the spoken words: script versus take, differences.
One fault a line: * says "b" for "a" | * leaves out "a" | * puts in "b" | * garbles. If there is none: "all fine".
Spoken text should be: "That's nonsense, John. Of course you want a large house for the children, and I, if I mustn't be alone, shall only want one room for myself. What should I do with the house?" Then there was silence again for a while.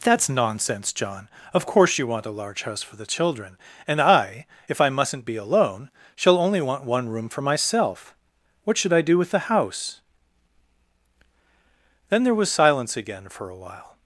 all fine